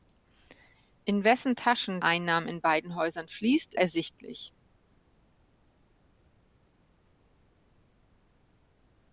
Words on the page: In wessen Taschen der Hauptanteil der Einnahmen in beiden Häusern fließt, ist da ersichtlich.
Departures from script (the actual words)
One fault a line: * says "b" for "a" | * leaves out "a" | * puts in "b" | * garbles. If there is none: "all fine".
* leaves out "der Hauptanteil der"
* leaves out "ist da"